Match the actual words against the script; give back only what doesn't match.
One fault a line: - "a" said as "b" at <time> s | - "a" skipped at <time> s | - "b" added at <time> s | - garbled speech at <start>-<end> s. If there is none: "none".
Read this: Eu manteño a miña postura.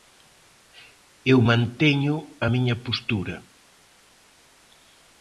none